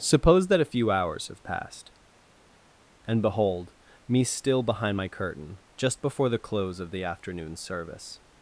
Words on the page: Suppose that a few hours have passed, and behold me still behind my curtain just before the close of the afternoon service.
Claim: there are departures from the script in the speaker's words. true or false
false